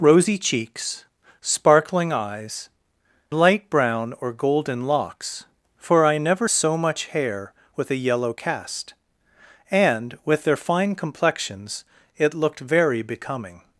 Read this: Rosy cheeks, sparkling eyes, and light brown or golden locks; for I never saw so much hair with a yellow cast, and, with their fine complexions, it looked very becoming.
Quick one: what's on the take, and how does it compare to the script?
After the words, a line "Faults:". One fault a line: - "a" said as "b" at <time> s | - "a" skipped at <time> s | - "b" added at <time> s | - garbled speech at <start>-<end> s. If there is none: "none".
Rosy cheeks, sparkling eyes, light brown or golden locks; for I never so much hair with a yellow cast, and, with their fine complexions, it looked very becoming.
Faults:
- "and" skipped at 2.7 s
- "saw" skipped at 6.5 s